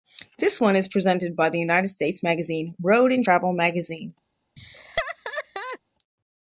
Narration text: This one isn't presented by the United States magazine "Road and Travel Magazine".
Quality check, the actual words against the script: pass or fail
fail